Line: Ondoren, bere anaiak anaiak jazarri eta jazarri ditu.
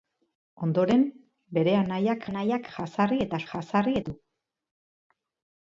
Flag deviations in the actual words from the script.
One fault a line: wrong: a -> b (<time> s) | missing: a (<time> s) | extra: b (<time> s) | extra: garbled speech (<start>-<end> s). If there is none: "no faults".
no faults